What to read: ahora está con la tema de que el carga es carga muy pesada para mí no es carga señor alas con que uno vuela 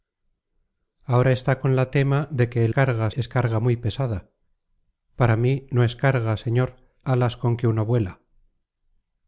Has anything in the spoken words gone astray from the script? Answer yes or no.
no